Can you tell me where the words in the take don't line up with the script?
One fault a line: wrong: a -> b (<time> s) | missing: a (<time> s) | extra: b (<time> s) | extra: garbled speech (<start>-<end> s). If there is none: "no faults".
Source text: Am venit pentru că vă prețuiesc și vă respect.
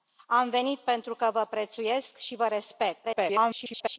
extra: garbled speech (3.0-4.0 s)